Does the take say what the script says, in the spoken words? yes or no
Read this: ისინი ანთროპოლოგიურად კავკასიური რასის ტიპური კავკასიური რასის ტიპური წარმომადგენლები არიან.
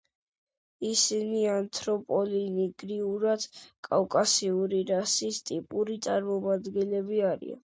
no